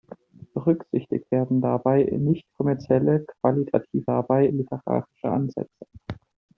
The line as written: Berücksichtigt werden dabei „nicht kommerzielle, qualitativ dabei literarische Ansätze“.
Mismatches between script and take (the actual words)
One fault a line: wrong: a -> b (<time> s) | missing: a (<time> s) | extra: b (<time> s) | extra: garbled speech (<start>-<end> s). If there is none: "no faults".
no faults